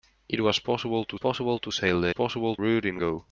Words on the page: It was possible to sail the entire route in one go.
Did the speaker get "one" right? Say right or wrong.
wrong